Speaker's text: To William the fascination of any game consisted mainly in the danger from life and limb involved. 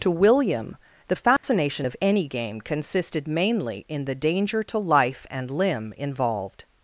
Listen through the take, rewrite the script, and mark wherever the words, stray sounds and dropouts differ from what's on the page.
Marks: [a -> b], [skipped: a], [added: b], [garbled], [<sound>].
To William the fascination [dropout] of any game consisted mainly in the danger [from -> to] life and limb involved.